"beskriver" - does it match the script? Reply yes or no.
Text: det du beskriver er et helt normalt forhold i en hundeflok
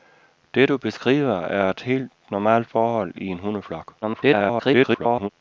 yes